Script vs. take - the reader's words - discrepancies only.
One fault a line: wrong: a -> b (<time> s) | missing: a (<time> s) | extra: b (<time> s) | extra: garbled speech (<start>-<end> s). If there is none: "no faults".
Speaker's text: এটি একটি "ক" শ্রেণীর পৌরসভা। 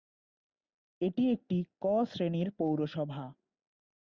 no faults